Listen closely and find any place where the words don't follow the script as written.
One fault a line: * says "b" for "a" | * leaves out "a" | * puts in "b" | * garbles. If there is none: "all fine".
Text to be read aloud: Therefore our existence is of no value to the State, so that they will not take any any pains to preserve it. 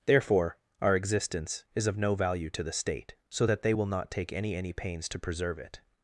all fine